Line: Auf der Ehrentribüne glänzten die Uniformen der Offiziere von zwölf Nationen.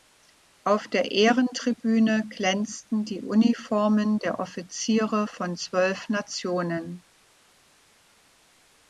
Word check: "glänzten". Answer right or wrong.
right